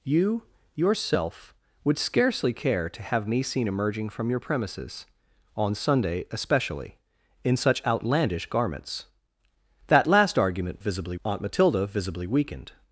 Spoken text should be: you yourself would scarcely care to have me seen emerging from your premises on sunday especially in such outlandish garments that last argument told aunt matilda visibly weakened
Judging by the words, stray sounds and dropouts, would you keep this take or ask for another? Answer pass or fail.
fail